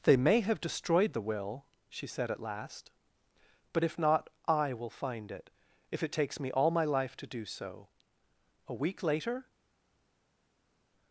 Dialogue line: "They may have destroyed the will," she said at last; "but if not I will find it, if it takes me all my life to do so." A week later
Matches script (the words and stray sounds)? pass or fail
pass